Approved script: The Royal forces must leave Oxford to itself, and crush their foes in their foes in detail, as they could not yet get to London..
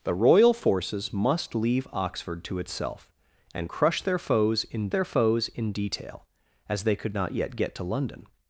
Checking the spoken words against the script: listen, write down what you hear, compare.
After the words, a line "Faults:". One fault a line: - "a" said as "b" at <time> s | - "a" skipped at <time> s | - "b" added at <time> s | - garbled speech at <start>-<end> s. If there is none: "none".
The Royal forces must leave Oxford to itself, and crush their foes in their foes in detail, as they could not yet get to London..
Faults:
none